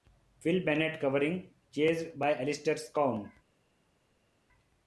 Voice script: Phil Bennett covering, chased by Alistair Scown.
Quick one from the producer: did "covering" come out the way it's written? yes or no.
yes